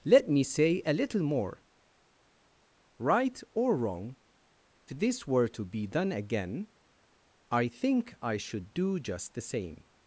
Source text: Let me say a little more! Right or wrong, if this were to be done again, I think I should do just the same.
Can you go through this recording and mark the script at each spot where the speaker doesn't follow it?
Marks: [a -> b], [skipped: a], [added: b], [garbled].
Let me say a little more! Right or wrong, [skipped: if] this were to be done again, I think I should do just the same.